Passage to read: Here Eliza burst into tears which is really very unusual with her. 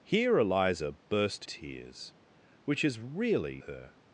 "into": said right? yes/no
no